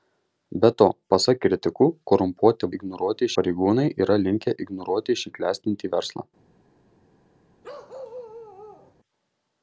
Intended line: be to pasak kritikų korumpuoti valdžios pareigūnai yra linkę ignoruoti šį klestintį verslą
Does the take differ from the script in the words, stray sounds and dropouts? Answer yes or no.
yes